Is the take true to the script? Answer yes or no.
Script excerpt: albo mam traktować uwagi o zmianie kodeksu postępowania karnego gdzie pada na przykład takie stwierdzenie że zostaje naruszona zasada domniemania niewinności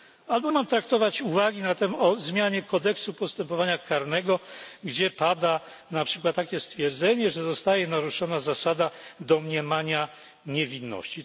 yes